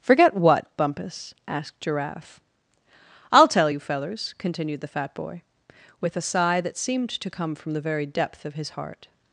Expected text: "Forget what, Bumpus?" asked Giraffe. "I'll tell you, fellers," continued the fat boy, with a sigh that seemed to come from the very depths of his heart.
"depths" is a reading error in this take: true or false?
true